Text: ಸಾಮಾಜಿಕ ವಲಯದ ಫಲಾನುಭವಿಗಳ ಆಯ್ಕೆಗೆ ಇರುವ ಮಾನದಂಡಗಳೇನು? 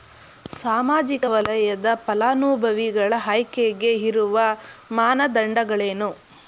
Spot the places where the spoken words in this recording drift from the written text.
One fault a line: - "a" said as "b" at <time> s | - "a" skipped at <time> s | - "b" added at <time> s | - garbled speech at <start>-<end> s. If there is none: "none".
none